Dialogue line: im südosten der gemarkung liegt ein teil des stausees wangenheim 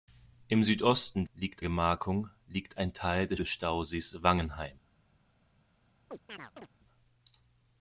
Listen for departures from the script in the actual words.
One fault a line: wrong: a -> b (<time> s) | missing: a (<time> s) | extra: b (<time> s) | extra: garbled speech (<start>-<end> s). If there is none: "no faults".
wrong: der -> liegt (1.3 s)
extra: des (3.3 s)